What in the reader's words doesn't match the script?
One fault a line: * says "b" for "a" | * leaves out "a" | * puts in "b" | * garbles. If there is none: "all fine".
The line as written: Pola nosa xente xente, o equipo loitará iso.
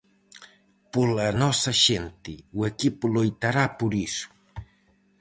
* leaves out "xente"
* puts in "por"